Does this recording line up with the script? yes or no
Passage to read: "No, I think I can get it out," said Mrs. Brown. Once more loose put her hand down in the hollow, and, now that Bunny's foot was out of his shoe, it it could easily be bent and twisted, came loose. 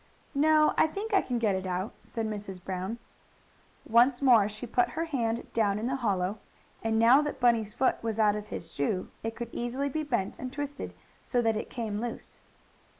no